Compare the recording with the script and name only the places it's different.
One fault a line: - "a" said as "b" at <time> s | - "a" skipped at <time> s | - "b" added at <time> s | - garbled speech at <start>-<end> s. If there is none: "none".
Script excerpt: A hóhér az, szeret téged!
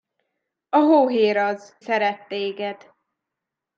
none